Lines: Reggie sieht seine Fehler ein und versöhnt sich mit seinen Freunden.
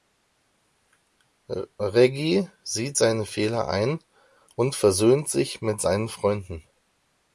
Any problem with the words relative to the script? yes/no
no